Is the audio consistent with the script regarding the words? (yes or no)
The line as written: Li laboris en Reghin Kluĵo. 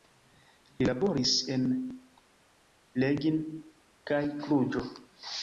no